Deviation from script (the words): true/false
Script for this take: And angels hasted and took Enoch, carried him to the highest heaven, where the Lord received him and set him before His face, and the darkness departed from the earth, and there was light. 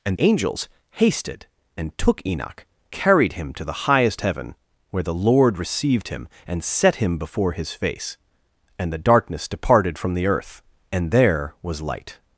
false